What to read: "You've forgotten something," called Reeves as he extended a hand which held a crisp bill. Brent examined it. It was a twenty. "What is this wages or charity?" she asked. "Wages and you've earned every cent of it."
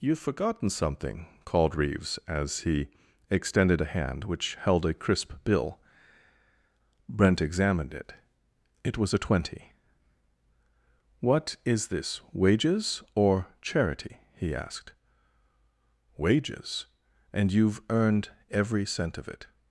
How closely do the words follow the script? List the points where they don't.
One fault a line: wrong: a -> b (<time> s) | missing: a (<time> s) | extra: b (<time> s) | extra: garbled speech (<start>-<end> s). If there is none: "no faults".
wrong: she -> he (14.3 s)